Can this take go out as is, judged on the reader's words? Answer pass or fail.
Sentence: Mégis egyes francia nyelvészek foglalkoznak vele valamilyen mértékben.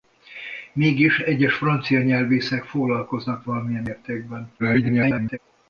fail